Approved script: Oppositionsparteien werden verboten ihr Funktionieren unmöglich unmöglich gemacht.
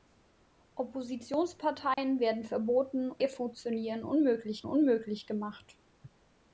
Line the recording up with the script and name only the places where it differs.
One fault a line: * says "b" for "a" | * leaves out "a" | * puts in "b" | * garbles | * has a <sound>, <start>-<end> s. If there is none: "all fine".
* has a dropout, 1.9-2.0 s